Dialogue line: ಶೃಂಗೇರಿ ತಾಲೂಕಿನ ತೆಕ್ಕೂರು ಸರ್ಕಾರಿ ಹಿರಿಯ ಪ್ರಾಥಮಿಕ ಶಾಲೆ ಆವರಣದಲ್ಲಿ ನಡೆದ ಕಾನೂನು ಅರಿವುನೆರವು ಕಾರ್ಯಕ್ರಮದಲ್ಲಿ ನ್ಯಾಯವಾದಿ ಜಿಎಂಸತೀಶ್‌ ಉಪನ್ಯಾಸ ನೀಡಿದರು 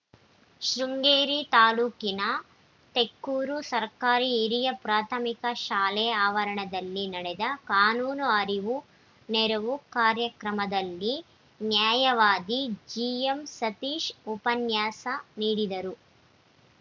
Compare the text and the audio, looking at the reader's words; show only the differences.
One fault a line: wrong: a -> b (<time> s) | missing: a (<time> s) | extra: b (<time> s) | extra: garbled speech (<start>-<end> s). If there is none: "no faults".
no faults